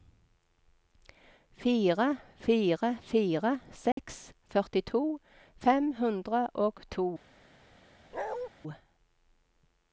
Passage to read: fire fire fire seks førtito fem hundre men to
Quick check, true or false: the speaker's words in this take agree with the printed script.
false